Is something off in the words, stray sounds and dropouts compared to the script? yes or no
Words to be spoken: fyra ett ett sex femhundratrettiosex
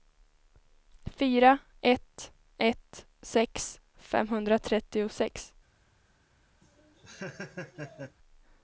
yes